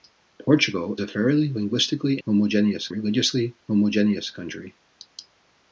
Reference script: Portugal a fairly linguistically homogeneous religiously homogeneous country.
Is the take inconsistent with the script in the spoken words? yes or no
no